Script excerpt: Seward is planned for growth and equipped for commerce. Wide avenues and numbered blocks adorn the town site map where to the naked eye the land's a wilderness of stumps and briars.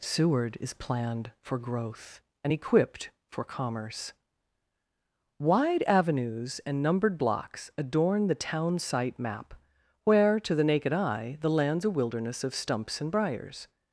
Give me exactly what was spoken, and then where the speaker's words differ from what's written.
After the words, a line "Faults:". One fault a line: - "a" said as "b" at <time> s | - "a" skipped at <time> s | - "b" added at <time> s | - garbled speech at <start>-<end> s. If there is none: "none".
Seward is planned for growth and equipped for commerce. Wide avenues and numbered blocks adorn the town site map where to the naked eye the land's a wilderness of stumps and briars.
Faults:
none